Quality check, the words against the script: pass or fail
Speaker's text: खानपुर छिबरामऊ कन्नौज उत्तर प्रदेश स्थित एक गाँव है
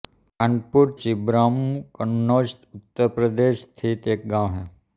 pass